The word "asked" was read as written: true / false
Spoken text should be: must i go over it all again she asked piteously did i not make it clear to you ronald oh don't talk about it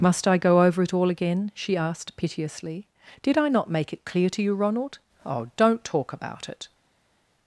true